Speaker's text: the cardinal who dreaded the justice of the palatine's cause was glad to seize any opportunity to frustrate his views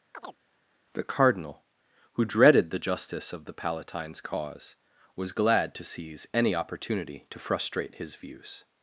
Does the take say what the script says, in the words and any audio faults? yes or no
no